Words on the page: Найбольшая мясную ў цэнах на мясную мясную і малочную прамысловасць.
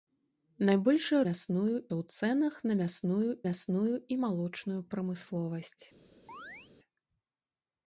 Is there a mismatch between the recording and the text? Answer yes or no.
no